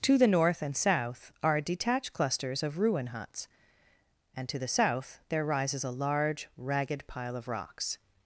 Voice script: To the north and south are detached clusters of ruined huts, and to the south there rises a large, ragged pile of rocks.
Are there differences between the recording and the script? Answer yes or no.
yes